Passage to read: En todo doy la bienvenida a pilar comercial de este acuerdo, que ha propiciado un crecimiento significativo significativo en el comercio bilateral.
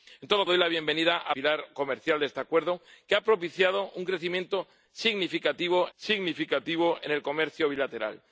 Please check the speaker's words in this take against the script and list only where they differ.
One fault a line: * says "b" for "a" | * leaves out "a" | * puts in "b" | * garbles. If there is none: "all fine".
all fine